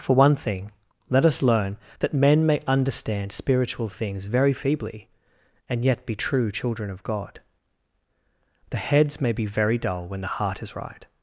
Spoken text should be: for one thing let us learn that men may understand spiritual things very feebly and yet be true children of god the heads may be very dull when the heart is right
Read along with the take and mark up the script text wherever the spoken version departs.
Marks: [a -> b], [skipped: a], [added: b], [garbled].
for one thing let us learn that men may understand spiritual things very feebly and yet be true children of god the heads may be very dull when the heart is right